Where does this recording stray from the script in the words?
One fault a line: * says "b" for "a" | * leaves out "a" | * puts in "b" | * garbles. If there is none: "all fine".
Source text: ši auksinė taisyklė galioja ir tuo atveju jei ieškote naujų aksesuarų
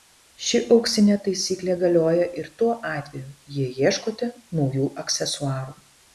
all fine